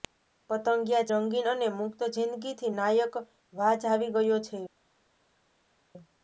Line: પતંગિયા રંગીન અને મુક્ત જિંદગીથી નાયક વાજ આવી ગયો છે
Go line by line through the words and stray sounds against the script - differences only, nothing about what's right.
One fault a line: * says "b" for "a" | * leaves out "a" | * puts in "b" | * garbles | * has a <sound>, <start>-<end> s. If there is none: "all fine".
all fine